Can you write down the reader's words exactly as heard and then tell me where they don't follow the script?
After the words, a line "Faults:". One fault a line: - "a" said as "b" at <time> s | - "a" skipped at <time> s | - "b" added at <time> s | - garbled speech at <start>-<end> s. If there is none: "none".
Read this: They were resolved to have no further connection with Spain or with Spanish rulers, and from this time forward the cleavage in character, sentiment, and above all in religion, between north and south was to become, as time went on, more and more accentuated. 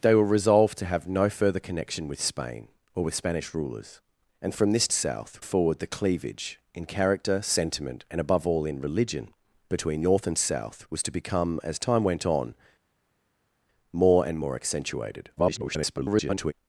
They were resolved to have no further connection with Spain or with Spanish rulers, and from this south forward the cleavage in character, sentiment, and above all in religion, between north and south was to become, as time went on, more and more accentuated. [garbled]
Faults:
- "time" said as "south" at 4.9 s
- garbled speech at 15.4-16.5 s